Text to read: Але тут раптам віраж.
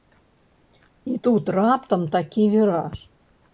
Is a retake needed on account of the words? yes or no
yes